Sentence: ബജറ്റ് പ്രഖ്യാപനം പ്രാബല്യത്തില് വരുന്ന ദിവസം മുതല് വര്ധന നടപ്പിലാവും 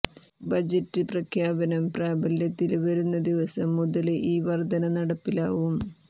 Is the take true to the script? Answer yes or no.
no